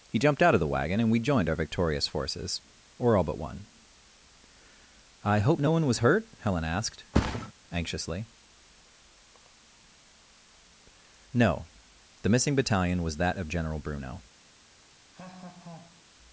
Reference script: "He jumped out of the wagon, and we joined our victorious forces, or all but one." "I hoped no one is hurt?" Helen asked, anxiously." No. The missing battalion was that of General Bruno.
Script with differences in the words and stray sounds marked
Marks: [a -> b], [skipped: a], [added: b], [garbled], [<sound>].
"He jumped out of the wagon, and we joined our victorious forces, or all but one." "I [hoped -> hope] no one [is -> was] hurt?" Helen asked, [thud] anxiously." No. The missing battalion was that of General Bruno. [laugh]